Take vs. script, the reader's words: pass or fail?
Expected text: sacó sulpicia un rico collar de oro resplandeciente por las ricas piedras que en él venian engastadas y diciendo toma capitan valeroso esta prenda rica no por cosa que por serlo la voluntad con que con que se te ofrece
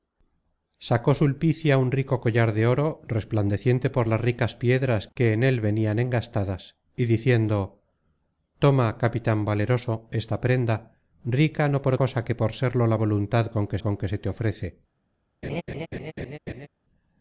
pass